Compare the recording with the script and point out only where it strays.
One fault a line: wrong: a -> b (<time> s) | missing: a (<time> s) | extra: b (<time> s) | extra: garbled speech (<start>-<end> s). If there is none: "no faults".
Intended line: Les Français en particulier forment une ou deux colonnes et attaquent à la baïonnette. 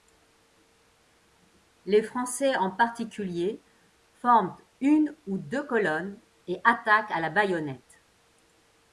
no faults